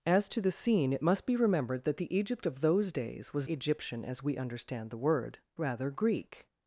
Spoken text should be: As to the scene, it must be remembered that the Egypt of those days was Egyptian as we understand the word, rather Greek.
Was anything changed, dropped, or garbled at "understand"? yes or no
no